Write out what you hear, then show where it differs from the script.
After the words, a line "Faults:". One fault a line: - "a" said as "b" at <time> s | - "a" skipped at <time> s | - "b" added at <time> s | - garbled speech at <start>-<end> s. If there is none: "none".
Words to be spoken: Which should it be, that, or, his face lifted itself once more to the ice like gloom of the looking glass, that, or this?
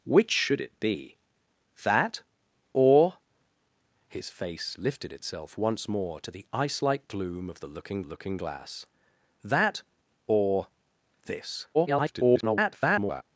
Which should it be, that, or, his face lifted itself once more to the ice like gloom of the looking looking glass, that, or this? [garbled]
Faults:
- "looking" added at 8.0 s
- garbled speech at 11.7-13.2 s